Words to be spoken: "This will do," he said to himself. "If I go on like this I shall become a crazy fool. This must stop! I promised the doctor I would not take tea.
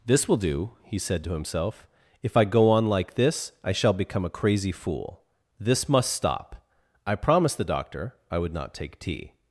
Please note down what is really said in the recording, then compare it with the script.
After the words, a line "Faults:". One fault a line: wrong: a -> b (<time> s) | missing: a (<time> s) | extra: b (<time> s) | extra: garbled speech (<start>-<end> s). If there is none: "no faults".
"This will do," he said to himself. "If I go on like this I shall become a crazy fool. This must stop! I promised the doctor I would not take tea.
Faults:
no faults